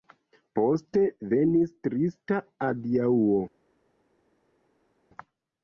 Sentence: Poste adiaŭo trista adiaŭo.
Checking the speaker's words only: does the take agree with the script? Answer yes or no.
no